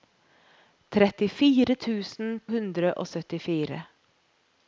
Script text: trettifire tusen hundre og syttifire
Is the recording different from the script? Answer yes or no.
no